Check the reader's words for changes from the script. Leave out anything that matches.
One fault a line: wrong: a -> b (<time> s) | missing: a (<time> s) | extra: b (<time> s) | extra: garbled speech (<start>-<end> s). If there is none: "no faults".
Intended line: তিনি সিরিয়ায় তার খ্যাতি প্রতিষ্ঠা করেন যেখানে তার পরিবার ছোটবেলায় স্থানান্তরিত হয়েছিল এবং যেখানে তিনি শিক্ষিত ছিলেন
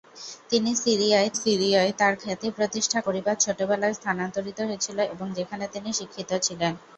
extra: সিরিয়ায় (1.3 s)
missing: করেন যেখানে তার (3.0 s)